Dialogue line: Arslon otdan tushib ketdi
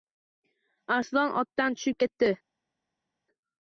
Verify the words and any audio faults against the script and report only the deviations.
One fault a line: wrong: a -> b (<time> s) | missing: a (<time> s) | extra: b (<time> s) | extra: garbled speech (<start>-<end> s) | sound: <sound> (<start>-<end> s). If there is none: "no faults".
no faults